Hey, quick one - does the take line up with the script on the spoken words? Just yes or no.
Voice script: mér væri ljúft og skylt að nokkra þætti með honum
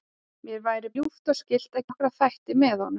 yes